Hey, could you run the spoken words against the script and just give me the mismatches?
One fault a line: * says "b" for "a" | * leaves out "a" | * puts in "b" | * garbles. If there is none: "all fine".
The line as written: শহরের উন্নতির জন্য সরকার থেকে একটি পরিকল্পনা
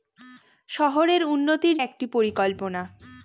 * leaves out "জন্য সরকার থেকে"